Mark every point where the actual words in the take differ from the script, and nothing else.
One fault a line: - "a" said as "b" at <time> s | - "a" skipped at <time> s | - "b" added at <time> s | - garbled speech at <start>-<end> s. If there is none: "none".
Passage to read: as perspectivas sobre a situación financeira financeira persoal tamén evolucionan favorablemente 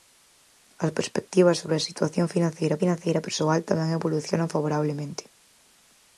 none